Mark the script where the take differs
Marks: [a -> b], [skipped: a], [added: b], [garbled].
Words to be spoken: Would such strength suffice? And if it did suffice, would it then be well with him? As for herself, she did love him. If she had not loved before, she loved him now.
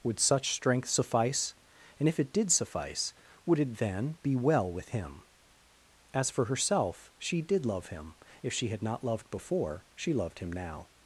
Would such strength suffice? And if it did suffice, would it then be well with him? As for herself, she did love him. If she had not loved before, she loved him now.